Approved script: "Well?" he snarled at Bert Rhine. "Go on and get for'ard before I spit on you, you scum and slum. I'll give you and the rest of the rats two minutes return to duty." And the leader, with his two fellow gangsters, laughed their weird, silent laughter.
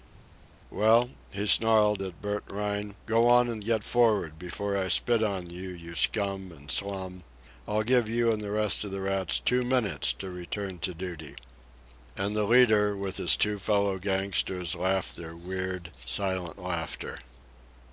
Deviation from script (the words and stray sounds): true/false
true